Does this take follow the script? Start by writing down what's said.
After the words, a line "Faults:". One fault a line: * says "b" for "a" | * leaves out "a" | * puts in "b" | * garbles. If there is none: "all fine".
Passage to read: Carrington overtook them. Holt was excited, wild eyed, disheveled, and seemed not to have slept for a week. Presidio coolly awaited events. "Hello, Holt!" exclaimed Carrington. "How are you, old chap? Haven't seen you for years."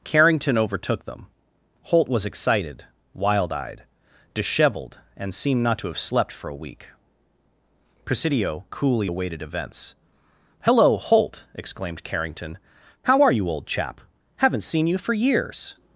Carrington overtook them. Holt was excited, wild eyed, disheveled, and seemed not to have slept for a week. Presidio coolly awaited events. "Hello, Holt!" exclaimed Carrington. "How are you, old chap? Haven't seen you for years."
Faults:
all fine